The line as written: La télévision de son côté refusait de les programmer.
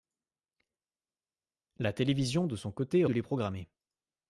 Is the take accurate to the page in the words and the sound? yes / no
no